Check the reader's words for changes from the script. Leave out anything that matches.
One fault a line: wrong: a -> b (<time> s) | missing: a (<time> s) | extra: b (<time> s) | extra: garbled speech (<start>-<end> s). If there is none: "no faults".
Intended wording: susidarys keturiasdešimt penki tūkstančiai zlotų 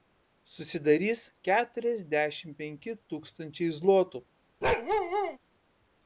no faults